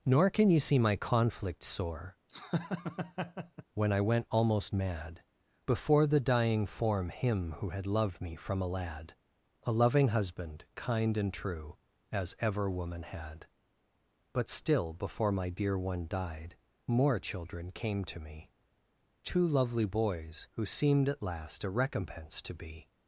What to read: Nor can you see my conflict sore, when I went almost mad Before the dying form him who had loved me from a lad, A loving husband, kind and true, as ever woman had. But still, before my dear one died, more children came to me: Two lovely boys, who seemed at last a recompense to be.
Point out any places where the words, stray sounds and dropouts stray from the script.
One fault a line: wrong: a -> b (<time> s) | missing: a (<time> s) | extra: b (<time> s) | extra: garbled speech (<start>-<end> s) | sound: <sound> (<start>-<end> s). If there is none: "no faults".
sound: laugh (2.3-3.6 s)